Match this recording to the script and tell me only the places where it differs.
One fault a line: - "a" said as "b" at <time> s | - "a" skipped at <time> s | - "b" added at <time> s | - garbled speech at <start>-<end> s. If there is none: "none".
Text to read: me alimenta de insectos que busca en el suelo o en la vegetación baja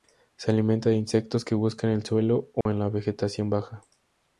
- "me" said as "se" at 0.3 s